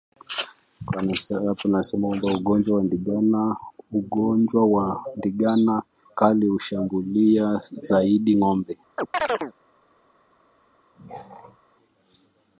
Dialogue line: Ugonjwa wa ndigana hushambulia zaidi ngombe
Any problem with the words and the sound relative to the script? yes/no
yes